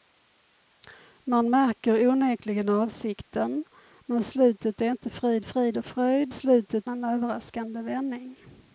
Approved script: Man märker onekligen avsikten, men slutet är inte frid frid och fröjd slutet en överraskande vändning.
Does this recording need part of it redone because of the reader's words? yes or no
no